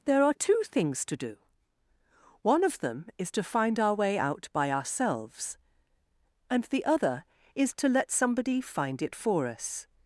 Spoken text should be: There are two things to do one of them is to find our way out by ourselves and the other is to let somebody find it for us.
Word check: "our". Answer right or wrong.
right